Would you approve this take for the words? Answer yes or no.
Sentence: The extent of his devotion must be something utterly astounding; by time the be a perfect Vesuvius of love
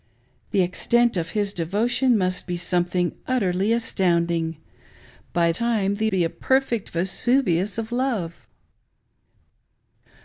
yes